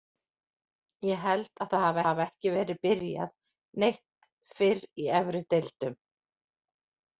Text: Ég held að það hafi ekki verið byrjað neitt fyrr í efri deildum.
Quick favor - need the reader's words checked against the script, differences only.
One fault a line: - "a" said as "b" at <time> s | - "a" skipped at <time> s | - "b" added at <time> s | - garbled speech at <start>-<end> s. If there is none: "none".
- "hafi" added at 2.1 s